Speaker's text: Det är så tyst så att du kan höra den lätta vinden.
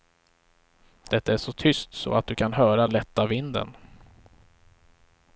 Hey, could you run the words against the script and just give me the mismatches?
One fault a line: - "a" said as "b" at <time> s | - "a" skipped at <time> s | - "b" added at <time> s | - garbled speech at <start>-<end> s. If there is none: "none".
- "den" skipped at 2.9 s